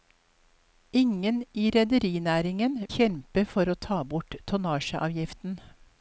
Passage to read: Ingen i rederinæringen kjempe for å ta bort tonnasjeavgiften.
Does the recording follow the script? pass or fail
pass